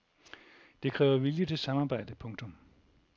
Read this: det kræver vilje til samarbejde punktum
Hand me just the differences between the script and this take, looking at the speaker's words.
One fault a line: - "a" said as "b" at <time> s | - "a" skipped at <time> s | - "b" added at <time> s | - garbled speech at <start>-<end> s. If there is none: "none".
none